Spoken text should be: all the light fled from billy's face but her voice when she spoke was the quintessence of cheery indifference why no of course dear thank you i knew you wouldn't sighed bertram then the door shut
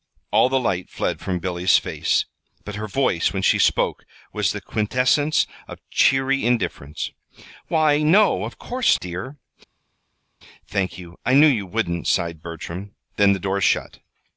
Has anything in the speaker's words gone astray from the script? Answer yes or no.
no